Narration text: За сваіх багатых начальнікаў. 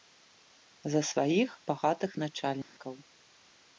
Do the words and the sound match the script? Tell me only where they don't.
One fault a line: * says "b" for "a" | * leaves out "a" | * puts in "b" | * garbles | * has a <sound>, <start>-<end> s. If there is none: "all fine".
* has a dropout, 2.6-2.8 s